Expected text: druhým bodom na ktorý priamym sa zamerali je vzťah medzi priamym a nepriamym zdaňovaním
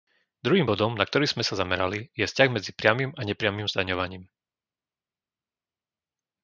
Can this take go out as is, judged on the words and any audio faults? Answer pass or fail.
fail